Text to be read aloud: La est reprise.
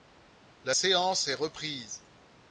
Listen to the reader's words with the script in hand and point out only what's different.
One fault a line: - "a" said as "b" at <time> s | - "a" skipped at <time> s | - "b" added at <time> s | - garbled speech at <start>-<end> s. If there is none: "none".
- "séance" added at 0.7 s